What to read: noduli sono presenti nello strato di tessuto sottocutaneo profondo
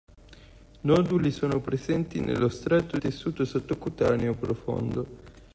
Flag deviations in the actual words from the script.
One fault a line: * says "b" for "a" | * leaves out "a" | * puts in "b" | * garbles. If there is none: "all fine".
* leaves out "di"